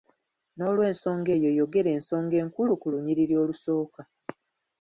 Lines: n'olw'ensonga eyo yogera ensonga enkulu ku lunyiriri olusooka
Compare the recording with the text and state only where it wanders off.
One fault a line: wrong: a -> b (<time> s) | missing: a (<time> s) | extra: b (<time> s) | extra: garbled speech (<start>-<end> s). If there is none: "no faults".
no faults